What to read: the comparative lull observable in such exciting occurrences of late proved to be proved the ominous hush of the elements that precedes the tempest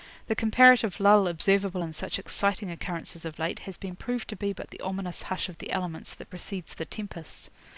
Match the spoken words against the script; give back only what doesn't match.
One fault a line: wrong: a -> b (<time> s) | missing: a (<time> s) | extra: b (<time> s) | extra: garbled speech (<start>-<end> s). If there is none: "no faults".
extra: has been (3.7 s)
wrong: proved -> but (4.5 s)